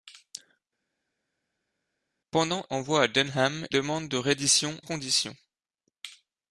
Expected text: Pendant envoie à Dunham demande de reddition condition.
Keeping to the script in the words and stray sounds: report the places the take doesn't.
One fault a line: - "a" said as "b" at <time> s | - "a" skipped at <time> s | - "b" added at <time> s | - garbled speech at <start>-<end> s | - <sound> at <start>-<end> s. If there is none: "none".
none